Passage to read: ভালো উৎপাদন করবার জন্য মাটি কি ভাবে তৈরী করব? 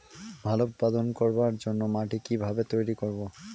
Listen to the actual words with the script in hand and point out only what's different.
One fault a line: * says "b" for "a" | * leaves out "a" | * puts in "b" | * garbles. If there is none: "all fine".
all fine